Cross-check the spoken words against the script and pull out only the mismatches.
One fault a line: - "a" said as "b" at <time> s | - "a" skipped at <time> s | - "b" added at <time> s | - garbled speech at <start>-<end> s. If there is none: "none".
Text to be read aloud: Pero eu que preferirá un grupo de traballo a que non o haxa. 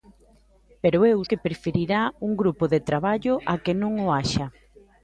none